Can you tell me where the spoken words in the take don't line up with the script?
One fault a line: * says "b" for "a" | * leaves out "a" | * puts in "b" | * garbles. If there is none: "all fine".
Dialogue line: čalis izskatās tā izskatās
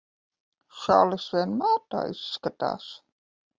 * says "vienmēr" for "izskatās"